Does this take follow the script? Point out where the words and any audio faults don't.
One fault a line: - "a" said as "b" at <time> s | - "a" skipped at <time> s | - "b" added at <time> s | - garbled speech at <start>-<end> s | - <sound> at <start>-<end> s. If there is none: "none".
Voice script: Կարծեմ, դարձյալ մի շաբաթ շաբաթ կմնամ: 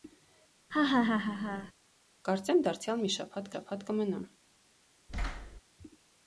- laugh at 0.7-1.7 s
- thud at 5.1-5.6 s